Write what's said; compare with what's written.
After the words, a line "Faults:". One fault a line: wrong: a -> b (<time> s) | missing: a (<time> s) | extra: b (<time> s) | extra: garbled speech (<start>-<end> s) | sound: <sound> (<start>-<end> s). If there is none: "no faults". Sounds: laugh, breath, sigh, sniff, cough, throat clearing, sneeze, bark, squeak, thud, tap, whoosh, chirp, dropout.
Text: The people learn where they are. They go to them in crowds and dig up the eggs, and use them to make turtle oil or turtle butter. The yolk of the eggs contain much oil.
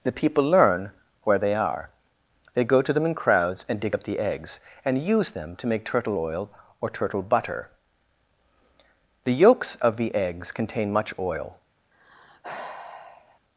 The people learn where they are. They go to them in crowds and dig up the eggs, and use them to make turtle oil or turtle butter. The yolks of the eggs contain much oil.
Faults:
wrong: yolk -> yolks (9.3 s)
sound: sigh (11.9-13.4 s)